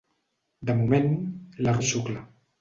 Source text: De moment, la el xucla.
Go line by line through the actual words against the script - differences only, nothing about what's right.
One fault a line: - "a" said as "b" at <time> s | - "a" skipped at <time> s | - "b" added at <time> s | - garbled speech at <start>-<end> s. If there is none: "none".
none